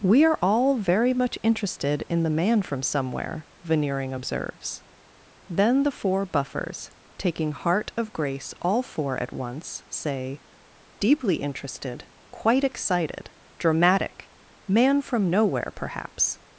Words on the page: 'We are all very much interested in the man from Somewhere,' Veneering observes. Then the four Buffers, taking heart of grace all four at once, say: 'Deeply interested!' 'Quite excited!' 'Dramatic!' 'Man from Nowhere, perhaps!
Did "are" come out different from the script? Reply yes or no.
no